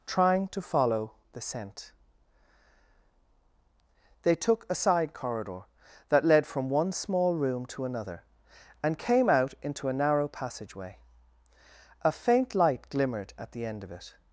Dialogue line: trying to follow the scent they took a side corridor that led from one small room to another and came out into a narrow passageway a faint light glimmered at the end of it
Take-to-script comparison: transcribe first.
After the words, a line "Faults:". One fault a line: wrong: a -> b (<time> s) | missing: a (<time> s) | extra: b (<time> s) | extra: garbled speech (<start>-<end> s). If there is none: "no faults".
trying to follow the scent they took a side corridor that led from one small room to another and came out into a narrow passageway a faint light glimmered at the end of it
Faults:
no faults